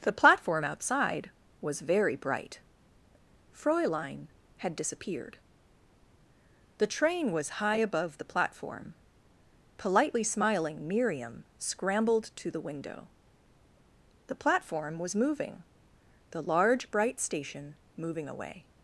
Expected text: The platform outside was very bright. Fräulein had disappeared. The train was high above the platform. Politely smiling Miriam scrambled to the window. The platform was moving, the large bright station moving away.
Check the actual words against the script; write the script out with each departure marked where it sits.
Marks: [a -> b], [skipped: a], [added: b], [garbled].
The platform outside was very bright. Fräulein had disappeared. The train was high above the platform. Politely smiling Miriam scrambled to the window. The platform was moving, the large bright station moving away.